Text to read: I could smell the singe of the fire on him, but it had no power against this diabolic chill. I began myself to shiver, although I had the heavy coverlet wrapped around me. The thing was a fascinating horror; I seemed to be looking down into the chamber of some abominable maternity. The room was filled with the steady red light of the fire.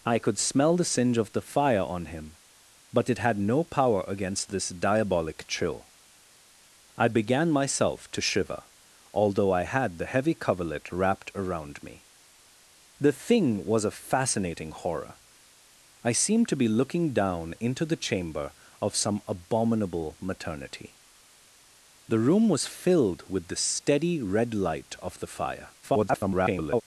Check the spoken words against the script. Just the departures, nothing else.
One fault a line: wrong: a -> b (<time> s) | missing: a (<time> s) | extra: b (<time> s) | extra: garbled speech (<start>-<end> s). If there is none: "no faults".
extra: garbled speech (25.8-26.8 s)